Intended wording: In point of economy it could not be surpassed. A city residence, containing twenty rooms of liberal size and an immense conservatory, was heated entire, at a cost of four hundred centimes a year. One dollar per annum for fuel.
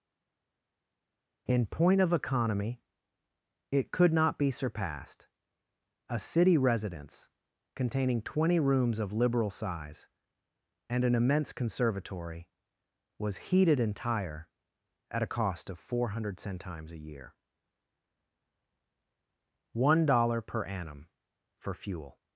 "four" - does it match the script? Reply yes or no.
yes